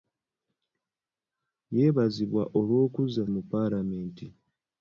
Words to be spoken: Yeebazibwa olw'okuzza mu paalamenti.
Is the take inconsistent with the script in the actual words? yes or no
no